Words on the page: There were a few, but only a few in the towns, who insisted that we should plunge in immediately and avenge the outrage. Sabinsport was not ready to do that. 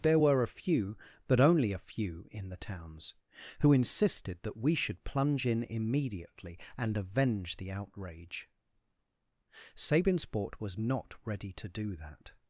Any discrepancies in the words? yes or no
no